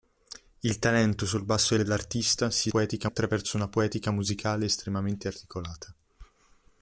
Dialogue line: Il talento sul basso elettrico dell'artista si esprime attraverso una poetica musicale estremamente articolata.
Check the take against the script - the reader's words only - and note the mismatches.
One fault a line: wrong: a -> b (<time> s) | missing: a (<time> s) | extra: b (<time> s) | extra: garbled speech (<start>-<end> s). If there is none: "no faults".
missing: elettrico (1.8 s)
wrong: esprime -> poetica (2.7 s)